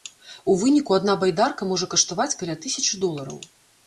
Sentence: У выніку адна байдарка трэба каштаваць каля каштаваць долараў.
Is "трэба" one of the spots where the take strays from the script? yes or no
yes